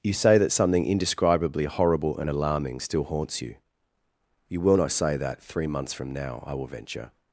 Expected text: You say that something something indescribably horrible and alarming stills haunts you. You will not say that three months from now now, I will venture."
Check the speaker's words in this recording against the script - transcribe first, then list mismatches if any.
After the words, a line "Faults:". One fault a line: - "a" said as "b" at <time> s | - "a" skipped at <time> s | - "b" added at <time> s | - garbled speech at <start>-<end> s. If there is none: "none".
You say that something indescribably horrible and alarming still haunts you. You will not say that three months from now, I will venture."
Faults:
- "something" skipped at 0.8 s
- "stills" said as "still" at 2.8 s
- "now" skipped at 6.4 s